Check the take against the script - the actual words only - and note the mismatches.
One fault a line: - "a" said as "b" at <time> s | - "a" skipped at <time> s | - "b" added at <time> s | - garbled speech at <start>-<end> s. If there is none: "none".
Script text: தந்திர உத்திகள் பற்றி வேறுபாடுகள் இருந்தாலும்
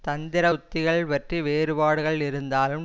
none